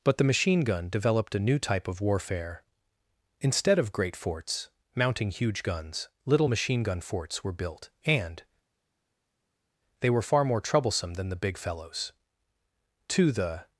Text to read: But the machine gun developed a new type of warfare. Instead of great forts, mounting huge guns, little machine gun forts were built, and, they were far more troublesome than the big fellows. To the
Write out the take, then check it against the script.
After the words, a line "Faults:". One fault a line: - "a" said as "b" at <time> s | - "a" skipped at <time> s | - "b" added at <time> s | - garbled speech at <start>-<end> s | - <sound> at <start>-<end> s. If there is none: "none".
But the machine gun developed a new type of warfare. Instead of great forts, mounting huge guns, little machine gun forts were built, and, they were far more troublesome than the big fellows. To the
Faults:
none